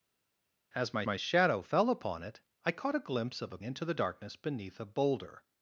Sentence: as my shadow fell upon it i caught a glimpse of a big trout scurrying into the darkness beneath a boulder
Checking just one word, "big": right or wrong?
wrong